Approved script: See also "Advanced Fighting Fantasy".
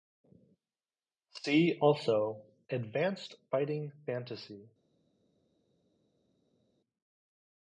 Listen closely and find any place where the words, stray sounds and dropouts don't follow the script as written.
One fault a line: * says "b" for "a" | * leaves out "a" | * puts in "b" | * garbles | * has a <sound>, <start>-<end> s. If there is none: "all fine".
all fine